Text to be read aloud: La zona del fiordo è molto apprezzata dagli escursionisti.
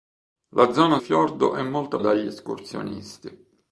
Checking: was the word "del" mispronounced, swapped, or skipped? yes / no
yes